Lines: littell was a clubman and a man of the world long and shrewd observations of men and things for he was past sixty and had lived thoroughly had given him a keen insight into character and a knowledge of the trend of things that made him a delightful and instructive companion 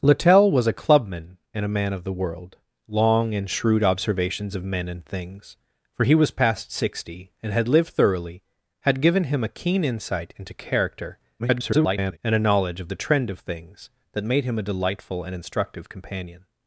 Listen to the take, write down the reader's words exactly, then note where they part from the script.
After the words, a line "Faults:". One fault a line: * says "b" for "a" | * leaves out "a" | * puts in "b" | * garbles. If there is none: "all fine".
littell was a clubman and a man of the world long and shrewd observations of men and things for he was past sixty and had lived thoroughly had given him a keen insight into character [garbled] and a knowledge of the trend of things that made him a delightful and instructive companion
Faults:
* garbles